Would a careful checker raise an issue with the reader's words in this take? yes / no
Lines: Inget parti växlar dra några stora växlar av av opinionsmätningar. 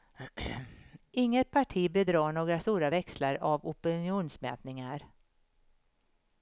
yes